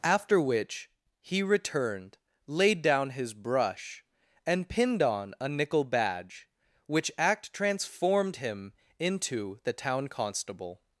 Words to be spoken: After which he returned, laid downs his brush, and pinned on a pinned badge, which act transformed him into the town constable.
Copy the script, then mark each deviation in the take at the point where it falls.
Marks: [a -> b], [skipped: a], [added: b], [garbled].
After which he returned, laid [downs -> down] his brush, and pinned on a [pinned -> nickel] badge, which act transformed him into the town constable.